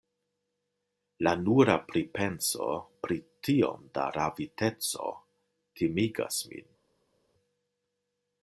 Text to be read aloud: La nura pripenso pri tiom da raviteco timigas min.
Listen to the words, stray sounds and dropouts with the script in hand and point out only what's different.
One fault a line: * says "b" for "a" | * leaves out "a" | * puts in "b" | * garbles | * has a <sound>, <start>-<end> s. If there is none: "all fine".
all fine